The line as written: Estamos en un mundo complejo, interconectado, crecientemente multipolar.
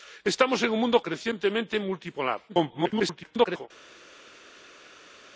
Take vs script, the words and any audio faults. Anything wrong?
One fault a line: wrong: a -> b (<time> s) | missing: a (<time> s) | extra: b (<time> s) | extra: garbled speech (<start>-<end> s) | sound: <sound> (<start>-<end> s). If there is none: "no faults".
missing: complejo interconectado (1.0 s)
extra: garbled speech (2.5-3.7 s)